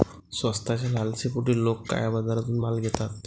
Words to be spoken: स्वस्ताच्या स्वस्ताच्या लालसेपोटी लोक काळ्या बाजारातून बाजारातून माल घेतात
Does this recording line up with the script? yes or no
no